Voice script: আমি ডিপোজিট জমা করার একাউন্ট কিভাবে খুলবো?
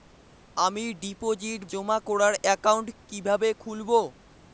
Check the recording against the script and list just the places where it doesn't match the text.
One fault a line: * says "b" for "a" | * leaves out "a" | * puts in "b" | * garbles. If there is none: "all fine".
all fine